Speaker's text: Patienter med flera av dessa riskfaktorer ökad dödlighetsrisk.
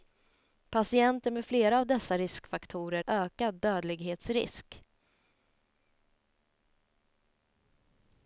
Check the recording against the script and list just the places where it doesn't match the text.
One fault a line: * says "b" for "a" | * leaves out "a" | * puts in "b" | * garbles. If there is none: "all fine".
all fine